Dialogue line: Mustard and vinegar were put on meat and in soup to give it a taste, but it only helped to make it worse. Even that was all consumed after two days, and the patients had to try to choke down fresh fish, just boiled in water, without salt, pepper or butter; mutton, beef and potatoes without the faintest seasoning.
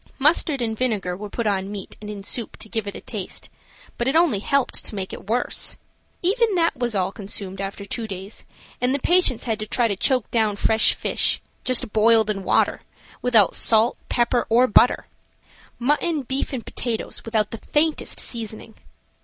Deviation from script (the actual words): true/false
false